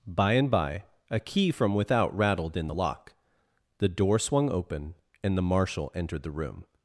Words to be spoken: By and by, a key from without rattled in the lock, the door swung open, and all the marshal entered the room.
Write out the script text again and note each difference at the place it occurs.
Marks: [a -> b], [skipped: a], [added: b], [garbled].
By and by, a key from without rattled in the lock, the door swung open, and [skipped: all] the marshal entered the room.